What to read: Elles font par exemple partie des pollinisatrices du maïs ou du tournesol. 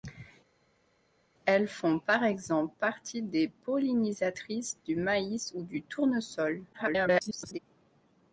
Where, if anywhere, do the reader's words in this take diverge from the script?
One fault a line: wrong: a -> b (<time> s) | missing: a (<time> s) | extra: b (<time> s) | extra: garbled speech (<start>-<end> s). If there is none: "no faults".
extra: garbled speech (6.7-7.6 s)